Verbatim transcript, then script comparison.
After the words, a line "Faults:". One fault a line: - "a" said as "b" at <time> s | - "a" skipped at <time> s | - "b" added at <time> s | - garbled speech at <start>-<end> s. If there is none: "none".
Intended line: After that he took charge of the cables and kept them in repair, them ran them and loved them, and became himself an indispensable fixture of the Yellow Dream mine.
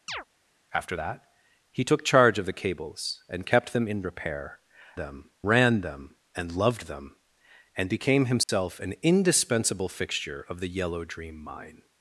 After that he took charge of the cables and kept them in repair, them ran them and loved them, and became himself an indispensable fixture of the Yellow Dream mine.
Faults:
none